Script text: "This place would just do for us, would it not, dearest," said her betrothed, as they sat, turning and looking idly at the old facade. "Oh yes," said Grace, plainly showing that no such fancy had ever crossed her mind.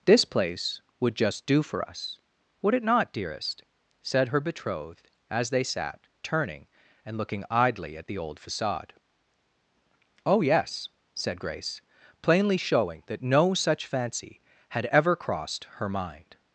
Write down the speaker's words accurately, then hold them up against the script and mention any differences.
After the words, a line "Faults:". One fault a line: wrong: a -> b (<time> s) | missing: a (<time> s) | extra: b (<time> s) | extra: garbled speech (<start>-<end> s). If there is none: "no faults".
"This place would just do for us, would it not, dearest," said her betrothed, as they sat, turning and looking idly at the old facade. "Oh yes," said Grace, plainly showing that no such fancy had ever crossed her mind.
Faults:
no faults